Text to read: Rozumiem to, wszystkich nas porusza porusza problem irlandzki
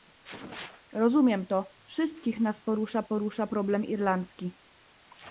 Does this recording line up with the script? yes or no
yes